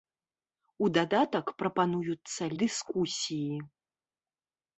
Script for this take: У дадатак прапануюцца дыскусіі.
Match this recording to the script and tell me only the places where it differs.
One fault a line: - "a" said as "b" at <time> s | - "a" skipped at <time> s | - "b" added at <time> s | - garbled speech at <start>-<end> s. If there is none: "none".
none